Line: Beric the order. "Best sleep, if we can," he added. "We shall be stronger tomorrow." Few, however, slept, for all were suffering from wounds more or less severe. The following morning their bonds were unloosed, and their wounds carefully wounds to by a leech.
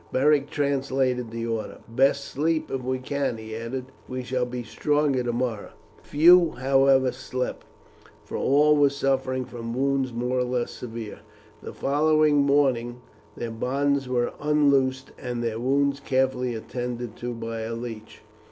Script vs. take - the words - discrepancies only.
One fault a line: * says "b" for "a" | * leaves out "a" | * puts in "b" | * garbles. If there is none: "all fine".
* puts in "translated"
* says "attended" for "wounds"